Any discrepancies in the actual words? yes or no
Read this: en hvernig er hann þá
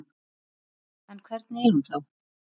yes